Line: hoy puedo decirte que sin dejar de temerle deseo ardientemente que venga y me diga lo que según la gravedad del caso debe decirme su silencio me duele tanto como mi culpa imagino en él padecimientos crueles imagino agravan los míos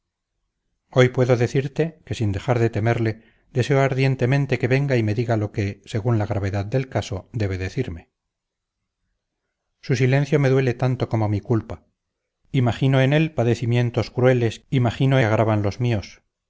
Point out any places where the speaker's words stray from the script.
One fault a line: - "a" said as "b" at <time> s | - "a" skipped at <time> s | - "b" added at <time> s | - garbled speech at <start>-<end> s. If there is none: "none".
none